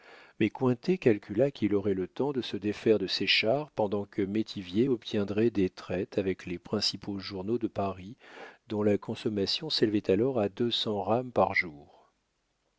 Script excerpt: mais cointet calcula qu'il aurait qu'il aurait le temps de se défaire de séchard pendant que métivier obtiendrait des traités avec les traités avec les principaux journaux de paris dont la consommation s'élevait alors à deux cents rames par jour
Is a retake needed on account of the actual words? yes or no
yes